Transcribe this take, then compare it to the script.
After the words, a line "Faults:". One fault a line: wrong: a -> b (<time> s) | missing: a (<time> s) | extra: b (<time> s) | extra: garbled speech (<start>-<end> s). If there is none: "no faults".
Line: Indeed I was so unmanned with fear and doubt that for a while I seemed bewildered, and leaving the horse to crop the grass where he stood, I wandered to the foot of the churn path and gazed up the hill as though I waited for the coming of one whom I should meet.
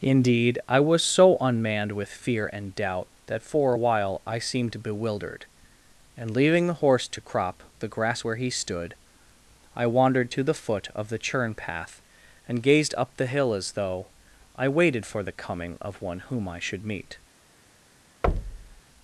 Indeed I was so unmanned with fear and doubt that for a while I seemed bewildered, and leaving the horse to crop the grass where he stood, I wandered to the foot of the churn path and gazed up the hill as though I waited for the coming of one whom I should meet.
Faults:
no faults